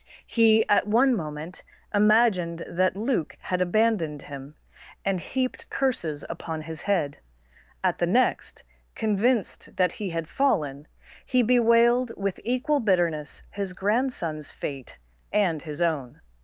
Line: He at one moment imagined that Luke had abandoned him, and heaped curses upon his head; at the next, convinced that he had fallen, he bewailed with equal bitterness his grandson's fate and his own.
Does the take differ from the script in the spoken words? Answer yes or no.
no